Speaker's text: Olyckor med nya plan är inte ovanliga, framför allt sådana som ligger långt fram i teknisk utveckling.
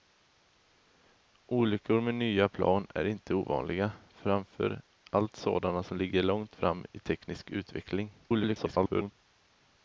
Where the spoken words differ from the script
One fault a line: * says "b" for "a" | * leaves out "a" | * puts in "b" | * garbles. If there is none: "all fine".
* garbles